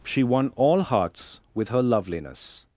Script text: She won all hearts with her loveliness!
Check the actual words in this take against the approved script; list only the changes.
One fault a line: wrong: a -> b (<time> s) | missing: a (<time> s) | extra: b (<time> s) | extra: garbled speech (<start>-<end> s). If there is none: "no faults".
no faults